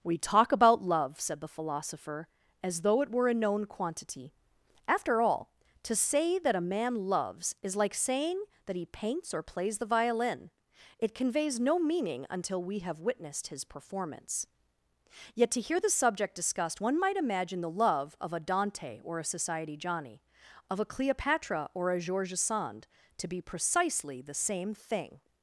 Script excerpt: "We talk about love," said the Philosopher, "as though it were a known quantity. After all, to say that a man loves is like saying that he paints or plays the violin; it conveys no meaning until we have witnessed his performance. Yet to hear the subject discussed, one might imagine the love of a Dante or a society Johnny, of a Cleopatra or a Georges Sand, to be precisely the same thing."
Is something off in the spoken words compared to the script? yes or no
no